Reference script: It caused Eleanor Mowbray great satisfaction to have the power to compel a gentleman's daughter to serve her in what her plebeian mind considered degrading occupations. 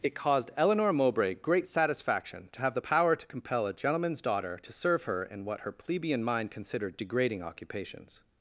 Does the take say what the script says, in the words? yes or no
yes